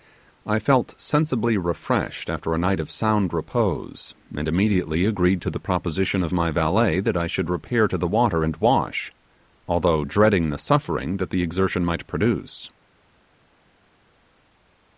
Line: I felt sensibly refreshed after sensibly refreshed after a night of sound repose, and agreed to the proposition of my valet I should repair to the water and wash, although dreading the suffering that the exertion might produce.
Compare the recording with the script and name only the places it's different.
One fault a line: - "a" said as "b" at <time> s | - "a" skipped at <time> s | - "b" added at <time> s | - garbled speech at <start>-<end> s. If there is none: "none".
- "sensibly refreshed after" skipped at 2.5 s
- "immediately" added at 4.5 s
- "that" added at 7.0 s